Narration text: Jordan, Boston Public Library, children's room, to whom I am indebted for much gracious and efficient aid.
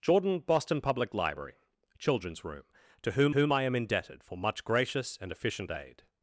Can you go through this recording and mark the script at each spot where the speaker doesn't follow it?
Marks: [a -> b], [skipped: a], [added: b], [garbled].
Jordan, Boston Public Library, children's room, to whom [added: whom] I am indebted for much gracious and efficient aid.